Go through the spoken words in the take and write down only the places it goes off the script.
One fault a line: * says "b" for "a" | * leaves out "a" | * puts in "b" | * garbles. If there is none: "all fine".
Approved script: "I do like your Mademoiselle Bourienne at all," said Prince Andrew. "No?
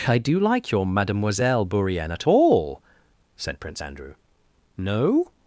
all fine